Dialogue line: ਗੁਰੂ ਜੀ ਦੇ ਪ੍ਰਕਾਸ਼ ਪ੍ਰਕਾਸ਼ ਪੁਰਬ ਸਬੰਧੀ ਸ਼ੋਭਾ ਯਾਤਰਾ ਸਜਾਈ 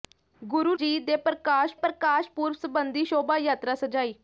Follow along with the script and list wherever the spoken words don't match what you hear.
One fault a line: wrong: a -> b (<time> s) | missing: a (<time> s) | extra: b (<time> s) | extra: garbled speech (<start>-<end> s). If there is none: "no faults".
no faults